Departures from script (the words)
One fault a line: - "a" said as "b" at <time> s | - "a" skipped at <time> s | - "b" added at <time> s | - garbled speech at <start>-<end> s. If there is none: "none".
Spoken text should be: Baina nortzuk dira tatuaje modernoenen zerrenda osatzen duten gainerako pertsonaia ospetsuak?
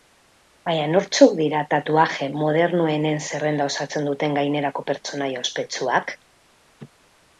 none